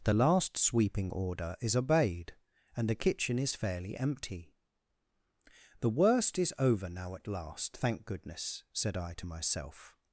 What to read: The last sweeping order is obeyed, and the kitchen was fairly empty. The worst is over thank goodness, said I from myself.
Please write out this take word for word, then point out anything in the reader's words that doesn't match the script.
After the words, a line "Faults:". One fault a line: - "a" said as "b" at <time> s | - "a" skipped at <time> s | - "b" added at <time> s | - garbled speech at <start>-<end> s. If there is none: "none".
The last sweeping order is obeyed, and the kitchen is fairly empty. The worst is over now at last, thank goodness, said I to myself.
Faults:
- "was" said as "is" at 3.4 s
- "now at last" added at 6.9 s
- "from" said as "to" at 9.1 s